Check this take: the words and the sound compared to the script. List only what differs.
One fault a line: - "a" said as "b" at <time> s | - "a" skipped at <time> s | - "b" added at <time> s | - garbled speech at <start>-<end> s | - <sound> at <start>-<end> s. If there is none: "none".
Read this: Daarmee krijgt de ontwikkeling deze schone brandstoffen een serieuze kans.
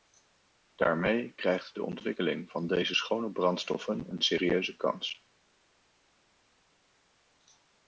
- "van" added at 2.5 s